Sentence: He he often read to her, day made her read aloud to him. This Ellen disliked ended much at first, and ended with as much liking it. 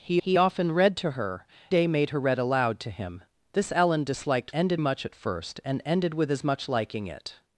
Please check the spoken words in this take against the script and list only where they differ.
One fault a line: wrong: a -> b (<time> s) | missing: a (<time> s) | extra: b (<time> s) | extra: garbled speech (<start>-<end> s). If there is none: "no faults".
no faults